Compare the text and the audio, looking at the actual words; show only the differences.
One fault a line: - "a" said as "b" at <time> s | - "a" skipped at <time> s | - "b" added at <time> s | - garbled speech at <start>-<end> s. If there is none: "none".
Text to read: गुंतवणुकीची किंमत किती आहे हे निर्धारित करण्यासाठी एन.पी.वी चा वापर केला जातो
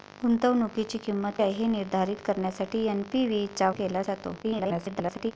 - "किती" skipped at 1.3 s
- "वापर" skipped at 3.7 s
- garbled speech at 4.4-5.3 s